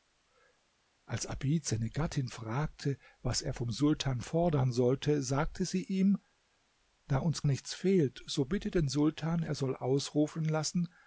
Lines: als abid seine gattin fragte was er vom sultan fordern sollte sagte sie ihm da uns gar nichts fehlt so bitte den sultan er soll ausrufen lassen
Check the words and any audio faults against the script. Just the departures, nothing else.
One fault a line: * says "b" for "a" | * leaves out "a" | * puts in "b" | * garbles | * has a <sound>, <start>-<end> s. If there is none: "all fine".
* leaves out "gar"